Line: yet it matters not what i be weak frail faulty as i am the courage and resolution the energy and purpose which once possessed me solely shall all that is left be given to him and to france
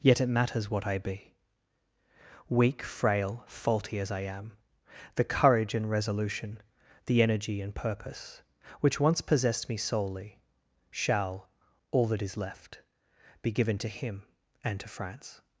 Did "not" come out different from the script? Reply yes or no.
yes